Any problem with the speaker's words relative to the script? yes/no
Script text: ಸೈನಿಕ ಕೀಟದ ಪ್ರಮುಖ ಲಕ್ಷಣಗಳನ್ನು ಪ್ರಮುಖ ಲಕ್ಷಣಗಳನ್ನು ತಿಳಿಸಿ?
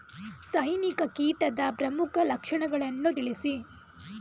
yes